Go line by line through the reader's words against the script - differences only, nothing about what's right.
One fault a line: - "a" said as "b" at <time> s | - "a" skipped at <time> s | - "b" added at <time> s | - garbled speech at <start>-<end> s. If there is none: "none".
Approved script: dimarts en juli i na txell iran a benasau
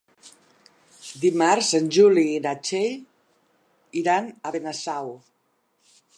none